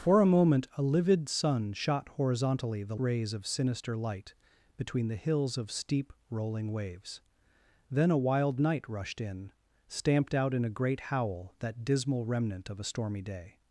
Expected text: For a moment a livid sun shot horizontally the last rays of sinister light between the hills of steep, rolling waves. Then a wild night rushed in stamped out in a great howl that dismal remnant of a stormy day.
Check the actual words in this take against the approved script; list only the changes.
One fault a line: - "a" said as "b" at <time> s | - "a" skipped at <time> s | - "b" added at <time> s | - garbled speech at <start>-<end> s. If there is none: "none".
- "last" skipped at 3.0 s